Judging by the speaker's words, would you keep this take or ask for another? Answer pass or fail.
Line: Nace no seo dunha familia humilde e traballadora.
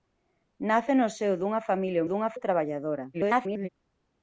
fail